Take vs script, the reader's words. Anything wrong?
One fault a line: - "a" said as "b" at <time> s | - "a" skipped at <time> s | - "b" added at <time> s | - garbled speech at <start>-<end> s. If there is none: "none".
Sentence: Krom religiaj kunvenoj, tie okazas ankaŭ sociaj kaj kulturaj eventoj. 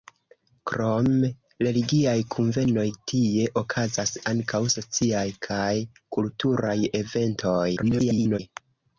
- garbled speech at 7.8-8.4 s